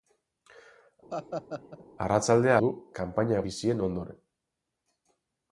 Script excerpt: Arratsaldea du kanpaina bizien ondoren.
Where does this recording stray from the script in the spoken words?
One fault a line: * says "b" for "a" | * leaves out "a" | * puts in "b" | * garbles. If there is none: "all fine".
all fine